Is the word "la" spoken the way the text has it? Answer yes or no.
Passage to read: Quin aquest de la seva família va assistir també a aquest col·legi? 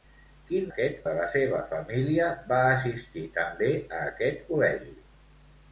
yes